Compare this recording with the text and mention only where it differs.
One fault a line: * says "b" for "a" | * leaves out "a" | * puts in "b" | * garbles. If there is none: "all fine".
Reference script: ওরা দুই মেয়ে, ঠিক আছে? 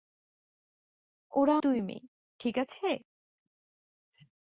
all fine